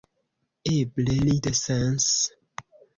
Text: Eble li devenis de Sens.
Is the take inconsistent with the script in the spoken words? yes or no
yes